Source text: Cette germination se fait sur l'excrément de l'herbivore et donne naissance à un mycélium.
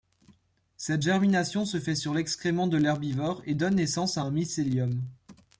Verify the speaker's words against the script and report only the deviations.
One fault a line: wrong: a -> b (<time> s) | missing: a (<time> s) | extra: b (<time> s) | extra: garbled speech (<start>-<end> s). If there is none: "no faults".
no faults